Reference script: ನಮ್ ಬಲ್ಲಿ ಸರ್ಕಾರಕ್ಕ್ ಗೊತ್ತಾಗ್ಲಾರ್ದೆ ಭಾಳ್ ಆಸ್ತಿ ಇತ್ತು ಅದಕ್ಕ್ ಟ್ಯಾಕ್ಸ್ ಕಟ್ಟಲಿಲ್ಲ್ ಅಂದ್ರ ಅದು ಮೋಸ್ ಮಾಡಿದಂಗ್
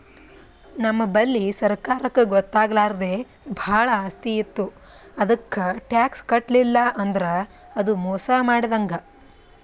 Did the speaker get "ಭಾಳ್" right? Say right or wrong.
right